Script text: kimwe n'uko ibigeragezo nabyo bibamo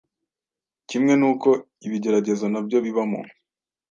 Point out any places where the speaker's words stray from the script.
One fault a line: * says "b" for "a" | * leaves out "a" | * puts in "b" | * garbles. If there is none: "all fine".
all fine